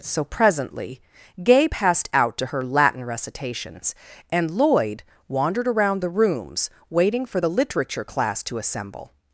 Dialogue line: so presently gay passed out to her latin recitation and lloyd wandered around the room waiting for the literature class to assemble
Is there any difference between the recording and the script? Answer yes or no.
yes